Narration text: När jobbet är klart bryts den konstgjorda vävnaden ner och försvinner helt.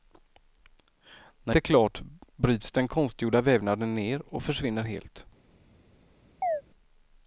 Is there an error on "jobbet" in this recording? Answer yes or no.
yes